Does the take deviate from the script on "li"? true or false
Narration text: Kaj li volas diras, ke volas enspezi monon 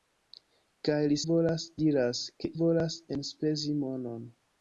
false